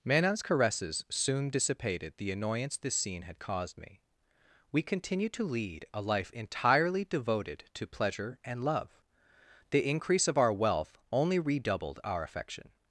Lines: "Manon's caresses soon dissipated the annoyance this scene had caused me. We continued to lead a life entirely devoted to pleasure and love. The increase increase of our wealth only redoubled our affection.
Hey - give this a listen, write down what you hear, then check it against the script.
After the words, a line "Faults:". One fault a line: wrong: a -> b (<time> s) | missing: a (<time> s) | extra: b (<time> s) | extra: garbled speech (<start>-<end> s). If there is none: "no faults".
"Manon's caresses soon dissipated the annoyance this scene had caused me. We continued to lead a life entirely devoted to pleasure and love. The increase of our wealth only redoubled our affection.
Faults:
missing: increase (10.3 s)